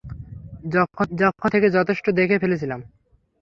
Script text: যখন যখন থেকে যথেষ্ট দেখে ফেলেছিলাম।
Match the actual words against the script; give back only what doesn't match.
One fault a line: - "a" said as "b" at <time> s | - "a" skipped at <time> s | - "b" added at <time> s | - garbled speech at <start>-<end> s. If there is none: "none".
none